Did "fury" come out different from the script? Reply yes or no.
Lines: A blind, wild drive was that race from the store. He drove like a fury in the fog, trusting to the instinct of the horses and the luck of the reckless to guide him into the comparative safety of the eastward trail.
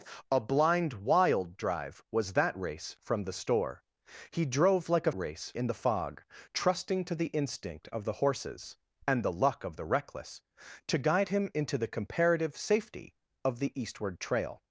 yes